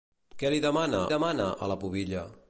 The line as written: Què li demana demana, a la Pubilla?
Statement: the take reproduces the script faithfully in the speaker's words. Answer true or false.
true